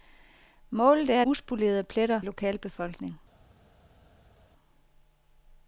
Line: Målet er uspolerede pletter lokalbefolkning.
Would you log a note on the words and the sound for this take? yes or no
no